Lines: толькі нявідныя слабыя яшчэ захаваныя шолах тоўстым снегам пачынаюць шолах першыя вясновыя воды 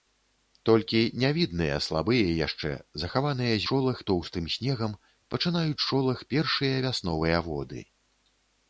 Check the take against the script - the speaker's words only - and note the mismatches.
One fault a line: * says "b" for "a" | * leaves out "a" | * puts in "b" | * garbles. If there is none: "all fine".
all fine